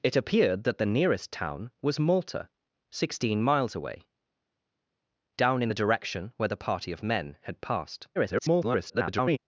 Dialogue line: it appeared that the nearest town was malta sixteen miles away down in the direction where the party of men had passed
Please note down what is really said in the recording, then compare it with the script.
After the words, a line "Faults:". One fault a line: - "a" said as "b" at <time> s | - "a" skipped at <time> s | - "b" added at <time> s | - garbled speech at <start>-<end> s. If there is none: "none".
it appeared that the nearest town was malta sixteen miles away down in the direction where the party of men had passed [garbled]
Faults:
- garbled speech at 8.2-9.4 s